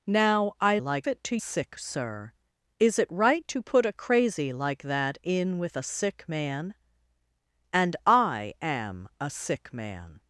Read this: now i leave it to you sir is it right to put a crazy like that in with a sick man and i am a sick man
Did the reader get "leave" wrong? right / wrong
wrong